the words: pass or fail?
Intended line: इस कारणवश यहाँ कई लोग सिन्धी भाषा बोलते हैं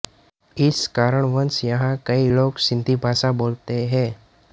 pass